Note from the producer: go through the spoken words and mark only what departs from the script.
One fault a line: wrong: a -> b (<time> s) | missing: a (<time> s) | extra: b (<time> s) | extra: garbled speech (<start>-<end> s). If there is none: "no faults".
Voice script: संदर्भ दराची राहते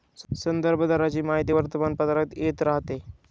extra: माहिती वर्तमानपत्रात येत (1.2 s)